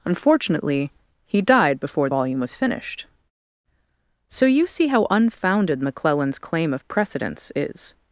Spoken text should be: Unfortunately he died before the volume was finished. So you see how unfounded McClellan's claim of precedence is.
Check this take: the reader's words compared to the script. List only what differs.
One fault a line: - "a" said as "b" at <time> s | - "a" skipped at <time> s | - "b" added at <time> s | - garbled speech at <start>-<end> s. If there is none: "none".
- "the" skipped at 2.1 s